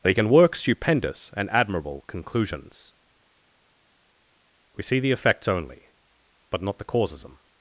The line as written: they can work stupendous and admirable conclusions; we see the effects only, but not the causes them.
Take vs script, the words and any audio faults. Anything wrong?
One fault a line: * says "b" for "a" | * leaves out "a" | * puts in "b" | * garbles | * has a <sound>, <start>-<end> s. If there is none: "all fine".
all fine